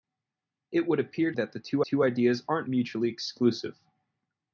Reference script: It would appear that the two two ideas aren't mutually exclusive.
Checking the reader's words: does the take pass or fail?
pass